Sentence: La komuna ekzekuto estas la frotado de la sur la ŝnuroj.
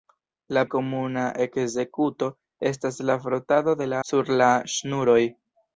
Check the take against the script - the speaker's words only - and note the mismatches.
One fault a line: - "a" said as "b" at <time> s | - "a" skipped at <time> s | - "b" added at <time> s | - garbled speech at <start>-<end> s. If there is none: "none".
none